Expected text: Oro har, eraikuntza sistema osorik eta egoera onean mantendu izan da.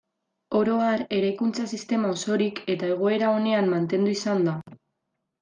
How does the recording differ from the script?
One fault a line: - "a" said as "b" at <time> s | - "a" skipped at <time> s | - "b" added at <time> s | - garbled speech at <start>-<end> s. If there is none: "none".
none